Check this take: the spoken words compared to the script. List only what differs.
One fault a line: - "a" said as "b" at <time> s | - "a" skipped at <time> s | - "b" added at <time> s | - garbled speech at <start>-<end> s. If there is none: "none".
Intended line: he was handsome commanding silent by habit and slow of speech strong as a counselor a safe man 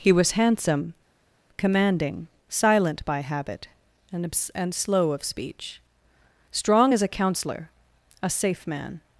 - "and" added at 4.5 s